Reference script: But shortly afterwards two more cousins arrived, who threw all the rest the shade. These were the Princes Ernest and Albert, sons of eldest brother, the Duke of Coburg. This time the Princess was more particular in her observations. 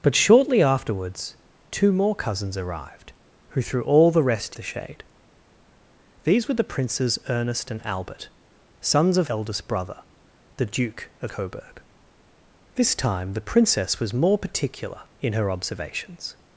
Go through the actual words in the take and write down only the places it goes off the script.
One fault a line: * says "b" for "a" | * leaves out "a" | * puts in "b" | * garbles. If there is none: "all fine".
all fine